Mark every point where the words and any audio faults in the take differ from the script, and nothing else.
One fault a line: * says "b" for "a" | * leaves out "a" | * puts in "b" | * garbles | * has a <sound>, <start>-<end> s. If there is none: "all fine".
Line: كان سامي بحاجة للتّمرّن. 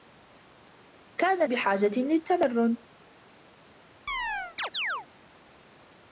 * leaves out "سامي"
* has a chirp, 4.1-5.1 s